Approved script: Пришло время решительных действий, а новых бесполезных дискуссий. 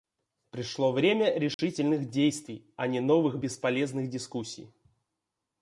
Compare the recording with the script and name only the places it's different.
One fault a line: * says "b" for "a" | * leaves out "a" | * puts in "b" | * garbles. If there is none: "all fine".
* puts in "не"